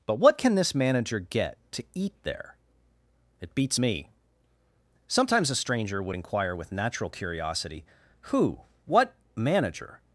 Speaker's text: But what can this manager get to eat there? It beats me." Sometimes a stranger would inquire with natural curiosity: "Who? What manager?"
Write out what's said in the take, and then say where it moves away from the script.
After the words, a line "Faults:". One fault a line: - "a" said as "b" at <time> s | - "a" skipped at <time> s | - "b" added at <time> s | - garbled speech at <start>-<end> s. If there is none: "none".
But what can this manager get to eat there? It beats me." Sometimes a stranger would inquire with natural curiosity: "Who? What manager?"
Faults:
none